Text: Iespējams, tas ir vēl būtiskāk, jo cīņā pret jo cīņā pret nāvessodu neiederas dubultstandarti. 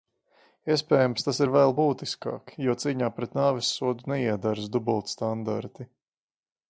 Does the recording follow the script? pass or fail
fail